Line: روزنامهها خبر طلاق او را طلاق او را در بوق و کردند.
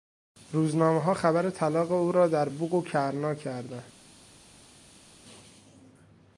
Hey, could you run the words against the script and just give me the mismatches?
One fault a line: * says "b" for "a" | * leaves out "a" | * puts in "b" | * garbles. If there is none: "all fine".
* leaves out "طلاق او را"
* puts in "کرنا"